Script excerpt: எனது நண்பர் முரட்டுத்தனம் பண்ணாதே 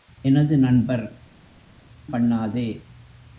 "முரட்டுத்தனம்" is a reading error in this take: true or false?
true